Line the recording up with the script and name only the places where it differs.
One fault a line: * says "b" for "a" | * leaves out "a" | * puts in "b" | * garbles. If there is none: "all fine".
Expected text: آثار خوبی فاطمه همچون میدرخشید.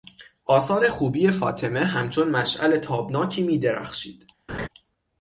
* puts in "مشعل تابناکی"